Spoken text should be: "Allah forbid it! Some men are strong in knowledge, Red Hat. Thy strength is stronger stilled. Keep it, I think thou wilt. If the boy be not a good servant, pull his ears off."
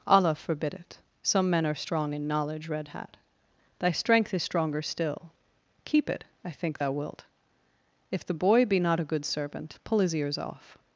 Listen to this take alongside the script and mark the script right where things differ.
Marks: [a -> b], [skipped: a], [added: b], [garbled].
"Allah forbid it! Some men are strong in knowledge, Red Hat. Thy strength is stronger [stilled. -> still] Keep it, I think thou wilt. If the boy be not a good servant, pull his ears off."